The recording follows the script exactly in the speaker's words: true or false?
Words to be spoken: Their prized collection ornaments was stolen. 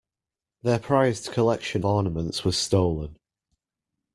true